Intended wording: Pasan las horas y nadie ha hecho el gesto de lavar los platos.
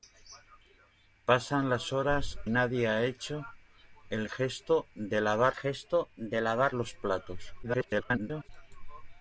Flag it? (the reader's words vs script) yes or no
yes